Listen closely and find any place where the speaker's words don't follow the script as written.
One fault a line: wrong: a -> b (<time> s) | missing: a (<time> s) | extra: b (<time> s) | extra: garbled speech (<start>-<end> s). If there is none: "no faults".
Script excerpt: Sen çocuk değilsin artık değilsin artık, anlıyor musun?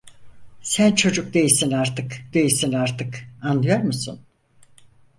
no faults